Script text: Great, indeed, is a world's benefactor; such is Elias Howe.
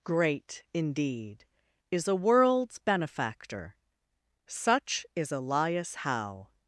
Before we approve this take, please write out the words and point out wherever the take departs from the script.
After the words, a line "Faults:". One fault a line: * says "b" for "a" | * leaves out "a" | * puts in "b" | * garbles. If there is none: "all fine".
Great, indeed, is a world's benefactor; such is Elias Howe.
Faults:
all fine